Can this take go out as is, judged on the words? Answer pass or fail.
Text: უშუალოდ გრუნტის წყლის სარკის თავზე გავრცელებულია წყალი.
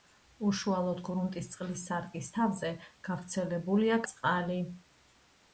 pass